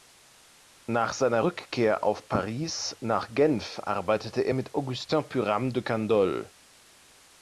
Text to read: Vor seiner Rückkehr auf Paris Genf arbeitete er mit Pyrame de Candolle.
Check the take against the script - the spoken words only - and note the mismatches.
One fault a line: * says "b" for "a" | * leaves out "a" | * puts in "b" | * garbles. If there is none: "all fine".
* says "Nach" for "Vor"
* puts in "nach"
* puts in "Augustin"